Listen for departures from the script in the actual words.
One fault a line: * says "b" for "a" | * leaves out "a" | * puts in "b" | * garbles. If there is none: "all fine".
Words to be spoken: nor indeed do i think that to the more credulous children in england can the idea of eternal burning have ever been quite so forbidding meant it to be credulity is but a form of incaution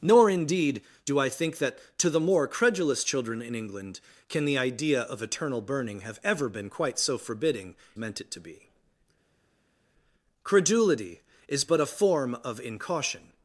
all fine